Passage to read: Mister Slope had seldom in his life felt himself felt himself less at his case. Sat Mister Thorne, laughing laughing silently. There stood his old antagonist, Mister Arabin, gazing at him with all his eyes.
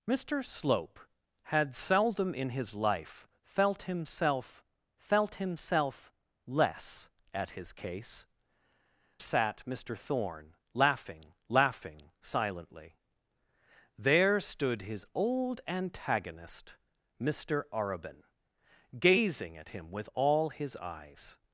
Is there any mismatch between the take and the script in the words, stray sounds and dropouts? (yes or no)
no